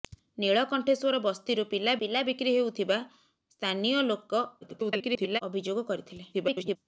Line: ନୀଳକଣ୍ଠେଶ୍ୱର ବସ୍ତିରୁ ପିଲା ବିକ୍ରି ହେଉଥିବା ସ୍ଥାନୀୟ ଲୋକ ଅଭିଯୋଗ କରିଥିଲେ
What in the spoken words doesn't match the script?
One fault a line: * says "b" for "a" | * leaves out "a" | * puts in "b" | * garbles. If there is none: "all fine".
* puts in "ପିଲା"
* garbles
* garbles